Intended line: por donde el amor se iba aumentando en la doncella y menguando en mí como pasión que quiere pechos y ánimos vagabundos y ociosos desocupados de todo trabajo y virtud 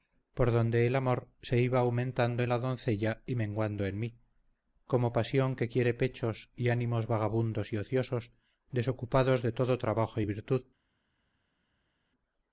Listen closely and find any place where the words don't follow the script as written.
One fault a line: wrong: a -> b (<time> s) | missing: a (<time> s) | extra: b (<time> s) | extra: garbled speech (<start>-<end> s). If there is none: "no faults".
no faults